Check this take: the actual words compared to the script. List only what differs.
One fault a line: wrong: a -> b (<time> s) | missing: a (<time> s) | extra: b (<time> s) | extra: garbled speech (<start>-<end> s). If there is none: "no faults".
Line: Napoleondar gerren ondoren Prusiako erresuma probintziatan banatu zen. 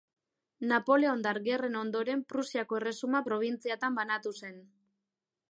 no faults